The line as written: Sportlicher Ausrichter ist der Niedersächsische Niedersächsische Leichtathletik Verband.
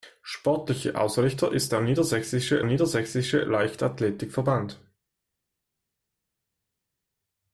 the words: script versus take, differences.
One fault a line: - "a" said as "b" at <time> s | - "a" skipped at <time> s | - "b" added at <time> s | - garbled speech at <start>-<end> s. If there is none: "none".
none